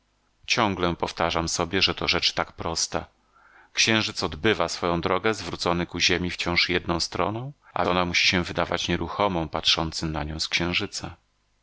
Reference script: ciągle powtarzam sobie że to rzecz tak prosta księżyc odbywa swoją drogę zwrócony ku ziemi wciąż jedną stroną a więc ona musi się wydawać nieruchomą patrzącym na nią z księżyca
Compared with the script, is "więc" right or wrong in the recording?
wrong